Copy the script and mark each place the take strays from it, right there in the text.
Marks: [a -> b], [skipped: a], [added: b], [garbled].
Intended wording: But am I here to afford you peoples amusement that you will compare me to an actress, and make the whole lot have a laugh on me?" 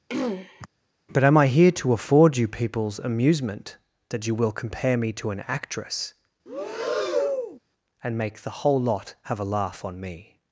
But am I here to afford you peoples amusement that you will compare me to an actress, and make the whole lot have a laugh on me?"